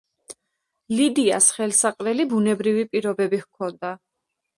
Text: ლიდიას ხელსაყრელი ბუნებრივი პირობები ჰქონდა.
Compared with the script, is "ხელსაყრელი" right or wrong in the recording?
right